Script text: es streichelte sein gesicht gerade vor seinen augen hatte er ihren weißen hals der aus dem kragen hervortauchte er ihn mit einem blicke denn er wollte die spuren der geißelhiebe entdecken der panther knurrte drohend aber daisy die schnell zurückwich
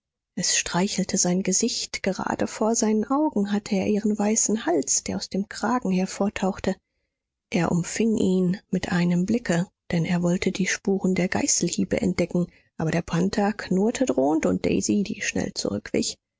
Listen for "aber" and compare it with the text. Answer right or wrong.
wrong